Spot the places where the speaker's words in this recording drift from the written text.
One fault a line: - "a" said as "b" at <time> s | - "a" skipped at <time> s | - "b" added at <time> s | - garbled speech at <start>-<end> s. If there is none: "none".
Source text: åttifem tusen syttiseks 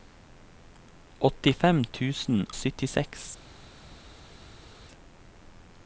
none